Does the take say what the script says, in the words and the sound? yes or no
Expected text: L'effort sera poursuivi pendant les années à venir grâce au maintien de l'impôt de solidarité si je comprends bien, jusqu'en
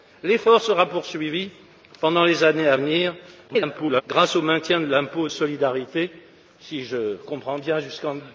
no